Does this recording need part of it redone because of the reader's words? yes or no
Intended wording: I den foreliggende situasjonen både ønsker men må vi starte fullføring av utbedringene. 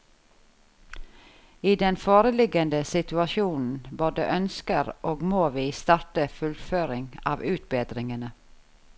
yes